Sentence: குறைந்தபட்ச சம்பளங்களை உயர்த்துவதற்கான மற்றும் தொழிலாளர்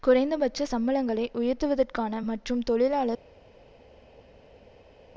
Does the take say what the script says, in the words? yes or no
yes